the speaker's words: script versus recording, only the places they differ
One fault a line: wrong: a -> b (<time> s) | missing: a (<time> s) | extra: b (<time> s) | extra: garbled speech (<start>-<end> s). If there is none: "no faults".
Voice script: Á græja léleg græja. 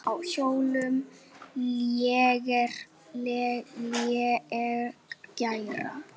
wrong: græja -> hjólum (0.2 s)